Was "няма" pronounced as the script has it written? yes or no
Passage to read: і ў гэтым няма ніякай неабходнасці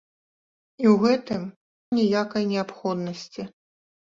no